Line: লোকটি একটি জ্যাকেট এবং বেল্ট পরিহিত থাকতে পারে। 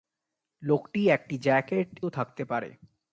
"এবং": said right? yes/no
no